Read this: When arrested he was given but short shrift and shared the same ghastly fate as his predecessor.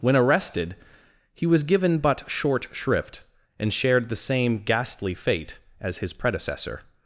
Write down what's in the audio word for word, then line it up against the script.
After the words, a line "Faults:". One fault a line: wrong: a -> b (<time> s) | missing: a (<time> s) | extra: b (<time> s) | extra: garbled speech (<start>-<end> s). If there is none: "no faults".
When arrested he was given but short shrift and shared the same ghastly fate as his predecessor.
Faults:
no faults